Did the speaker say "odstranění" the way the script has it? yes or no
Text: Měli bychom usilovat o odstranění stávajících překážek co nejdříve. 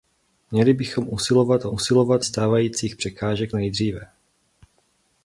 no